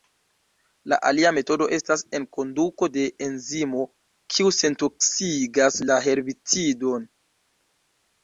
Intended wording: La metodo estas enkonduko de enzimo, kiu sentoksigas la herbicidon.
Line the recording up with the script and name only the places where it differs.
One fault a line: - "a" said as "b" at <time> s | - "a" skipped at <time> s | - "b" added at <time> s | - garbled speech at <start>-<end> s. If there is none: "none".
- "alia" added at 1.1 s